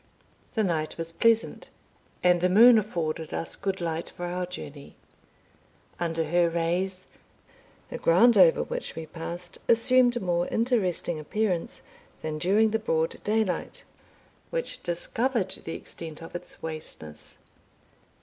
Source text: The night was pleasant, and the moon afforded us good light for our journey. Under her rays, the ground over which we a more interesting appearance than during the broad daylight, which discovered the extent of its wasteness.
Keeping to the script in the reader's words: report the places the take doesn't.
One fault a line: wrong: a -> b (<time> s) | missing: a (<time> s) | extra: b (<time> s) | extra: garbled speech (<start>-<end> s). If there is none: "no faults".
extra: passed assumed (9.1 s)